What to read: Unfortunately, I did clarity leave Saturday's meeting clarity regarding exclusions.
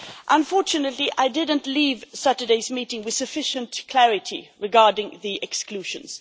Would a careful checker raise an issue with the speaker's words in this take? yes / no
yes